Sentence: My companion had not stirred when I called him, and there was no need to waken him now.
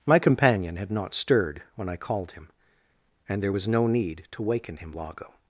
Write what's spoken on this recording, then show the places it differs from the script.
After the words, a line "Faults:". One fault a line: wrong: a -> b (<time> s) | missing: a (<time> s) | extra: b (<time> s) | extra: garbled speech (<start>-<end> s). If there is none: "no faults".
My companion had not stirred when I called him, and there was no need to waken him lago.
Faults:
wrong: now -> lago (4.9 s)